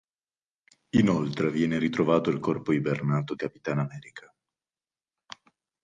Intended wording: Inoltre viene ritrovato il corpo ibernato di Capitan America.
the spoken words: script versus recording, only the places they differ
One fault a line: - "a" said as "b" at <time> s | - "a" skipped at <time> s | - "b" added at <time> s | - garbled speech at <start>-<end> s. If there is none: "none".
- "di" skipped at 3.4 s